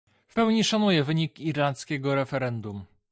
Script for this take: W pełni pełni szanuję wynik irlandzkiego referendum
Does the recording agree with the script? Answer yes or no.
no